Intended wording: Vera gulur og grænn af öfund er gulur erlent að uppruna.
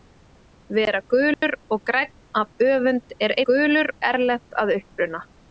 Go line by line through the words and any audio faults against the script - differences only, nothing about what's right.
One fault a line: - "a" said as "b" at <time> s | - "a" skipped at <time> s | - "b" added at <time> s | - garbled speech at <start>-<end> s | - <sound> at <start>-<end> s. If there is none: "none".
- dropout at 1.3-1.4 s